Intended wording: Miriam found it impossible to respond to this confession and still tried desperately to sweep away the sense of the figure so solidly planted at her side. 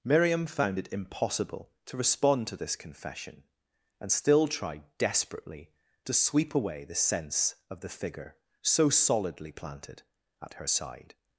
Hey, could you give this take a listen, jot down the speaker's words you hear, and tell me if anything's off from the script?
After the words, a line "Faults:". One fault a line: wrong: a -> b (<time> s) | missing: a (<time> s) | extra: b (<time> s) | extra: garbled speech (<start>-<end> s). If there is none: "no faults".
Miriam found it impossible to respond to this confession and still tried desperately to sweep away the sense of the figure so solidly planted at her side.
Faults:
no faults